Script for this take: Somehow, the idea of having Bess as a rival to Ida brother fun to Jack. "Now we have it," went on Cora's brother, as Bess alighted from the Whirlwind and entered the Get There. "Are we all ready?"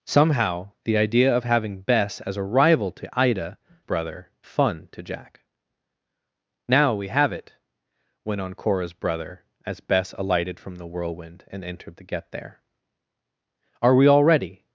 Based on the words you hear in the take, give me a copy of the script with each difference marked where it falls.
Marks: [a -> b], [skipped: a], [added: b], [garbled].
Somehow, the idea of having Bess as a rival to Ida brother fun to Jack. "Now we have it," went on Cora's brother, as Bess alighted from the Whirlwind and entered the Get There. "Are we all ready?"